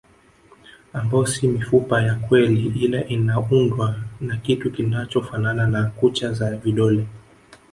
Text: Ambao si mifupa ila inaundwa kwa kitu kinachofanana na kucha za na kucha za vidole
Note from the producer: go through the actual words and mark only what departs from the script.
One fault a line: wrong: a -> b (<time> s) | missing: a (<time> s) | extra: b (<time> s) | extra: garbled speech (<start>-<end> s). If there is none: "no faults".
extra: ya kweli (2.0 s)
wrong: kwa -> na (4.2 s)
missing: na kucha za (6.6 s)